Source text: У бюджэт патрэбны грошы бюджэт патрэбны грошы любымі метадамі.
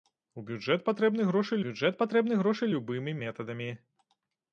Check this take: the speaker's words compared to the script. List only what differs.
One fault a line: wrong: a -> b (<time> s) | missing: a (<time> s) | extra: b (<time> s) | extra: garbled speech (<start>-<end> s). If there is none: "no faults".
no faults